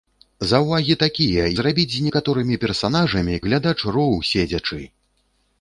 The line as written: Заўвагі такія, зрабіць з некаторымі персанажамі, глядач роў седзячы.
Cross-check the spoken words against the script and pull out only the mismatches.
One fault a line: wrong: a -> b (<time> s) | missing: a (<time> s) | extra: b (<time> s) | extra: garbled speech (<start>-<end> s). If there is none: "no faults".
no faults